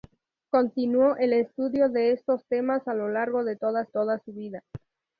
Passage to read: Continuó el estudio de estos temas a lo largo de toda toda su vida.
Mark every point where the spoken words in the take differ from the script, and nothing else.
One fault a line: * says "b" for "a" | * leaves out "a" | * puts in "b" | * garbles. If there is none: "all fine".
all fine